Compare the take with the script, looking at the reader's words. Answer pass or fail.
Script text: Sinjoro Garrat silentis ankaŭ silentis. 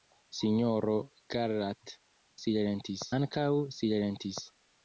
pass